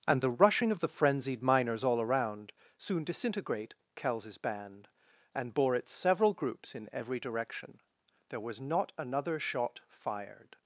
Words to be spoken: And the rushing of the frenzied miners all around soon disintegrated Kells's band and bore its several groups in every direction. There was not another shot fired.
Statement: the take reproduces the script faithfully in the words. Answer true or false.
false